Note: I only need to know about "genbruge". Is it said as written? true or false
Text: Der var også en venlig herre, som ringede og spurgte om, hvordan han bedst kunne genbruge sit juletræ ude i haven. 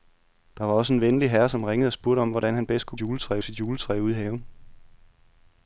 false